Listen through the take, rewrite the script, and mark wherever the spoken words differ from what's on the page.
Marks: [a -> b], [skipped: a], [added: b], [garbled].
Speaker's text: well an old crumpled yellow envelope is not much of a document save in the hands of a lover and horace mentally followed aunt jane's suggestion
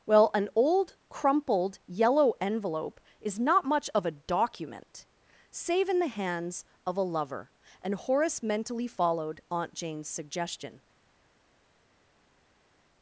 well an old crumpled yellow envelope is not much of a document save in the hands of a lover and horace mentally followed aunt jane's suggestion